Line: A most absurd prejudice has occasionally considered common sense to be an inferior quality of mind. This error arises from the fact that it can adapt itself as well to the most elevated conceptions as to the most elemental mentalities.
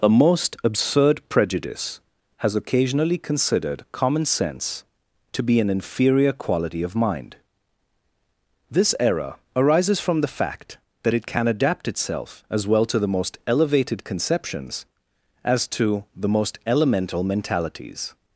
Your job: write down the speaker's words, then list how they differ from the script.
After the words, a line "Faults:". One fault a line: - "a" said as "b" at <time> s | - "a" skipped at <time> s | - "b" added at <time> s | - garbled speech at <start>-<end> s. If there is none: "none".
A most absurd prejudice has occasionally considered common sense to be an inferior quality of mind. This error arises from the fact that it can adapt itself as well to the most elevated conceptions as to the most elemental mentalities.
Faults:
none